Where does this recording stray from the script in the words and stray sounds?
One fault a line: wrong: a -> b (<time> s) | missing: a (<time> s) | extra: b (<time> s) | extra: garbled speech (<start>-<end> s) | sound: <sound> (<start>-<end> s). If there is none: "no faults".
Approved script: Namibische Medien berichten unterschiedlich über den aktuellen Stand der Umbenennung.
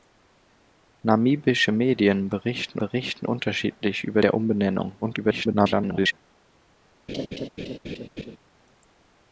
extra: berichten (2.8 s)
missing: den aktuellen Stand (4.2 s)
extra: garbled speech (5.0-6.1 s)
sound: laugh (7.1-8.4 s)